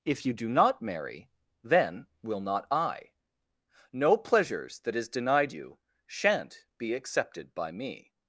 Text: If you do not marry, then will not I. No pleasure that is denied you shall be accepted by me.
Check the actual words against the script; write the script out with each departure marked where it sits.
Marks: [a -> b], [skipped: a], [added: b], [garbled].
If you do not marry, then will not I. No [pleasure -> pleasures] that is denied you [shall -> shan't] be accepted by me.